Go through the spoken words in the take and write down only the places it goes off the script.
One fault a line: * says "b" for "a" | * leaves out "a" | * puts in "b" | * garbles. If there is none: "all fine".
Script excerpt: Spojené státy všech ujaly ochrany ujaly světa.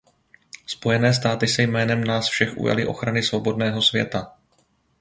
* puts in "se jménem nás"
* says "svobodného" for "ujaly"